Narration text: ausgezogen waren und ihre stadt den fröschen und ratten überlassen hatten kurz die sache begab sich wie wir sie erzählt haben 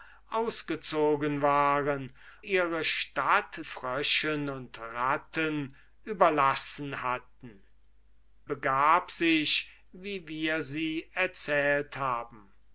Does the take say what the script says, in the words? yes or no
no